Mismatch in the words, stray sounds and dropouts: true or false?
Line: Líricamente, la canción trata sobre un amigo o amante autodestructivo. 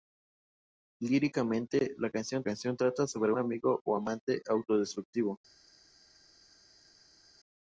true